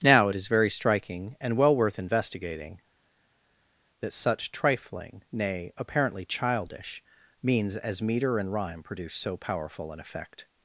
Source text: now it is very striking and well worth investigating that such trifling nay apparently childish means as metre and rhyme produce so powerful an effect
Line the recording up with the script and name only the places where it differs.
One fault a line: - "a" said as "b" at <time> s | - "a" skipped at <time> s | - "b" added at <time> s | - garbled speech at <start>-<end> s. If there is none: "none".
none